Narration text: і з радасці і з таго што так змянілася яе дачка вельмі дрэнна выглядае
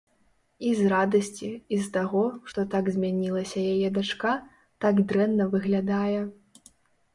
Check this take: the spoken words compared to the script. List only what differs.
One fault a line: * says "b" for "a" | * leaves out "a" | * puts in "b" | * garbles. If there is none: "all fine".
* says "так" for "вельмі"